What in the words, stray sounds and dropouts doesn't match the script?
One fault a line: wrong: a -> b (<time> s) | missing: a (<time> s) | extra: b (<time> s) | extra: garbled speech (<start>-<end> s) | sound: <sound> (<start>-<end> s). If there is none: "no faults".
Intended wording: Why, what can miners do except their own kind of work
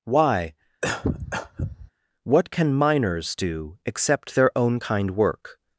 sound: cough (0.8-1.9 s)
missing: of (5.1 s)